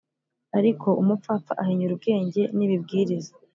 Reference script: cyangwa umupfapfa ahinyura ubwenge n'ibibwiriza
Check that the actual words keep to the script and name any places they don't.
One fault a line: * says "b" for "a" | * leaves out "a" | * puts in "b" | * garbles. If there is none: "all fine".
* says "ariko" for "cyangwa"